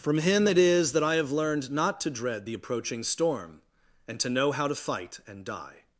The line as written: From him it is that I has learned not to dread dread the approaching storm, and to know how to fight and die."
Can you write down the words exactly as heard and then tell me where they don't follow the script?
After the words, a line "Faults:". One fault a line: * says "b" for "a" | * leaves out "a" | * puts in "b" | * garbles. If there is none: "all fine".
From him it is that I have learned not to dread the approaching storm, and to know how to fight and die."
Faults:
* says "have" for "has"
* leaves out "dread"